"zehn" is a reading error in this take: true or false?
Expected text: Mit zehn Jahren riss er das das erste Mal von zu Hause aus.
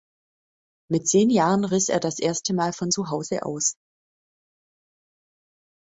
false